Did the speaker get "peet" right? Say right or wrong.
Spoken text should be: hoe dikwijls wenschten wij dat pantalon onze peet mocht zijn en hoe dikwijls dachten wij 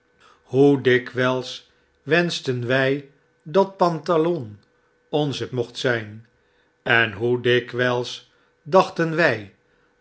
wrong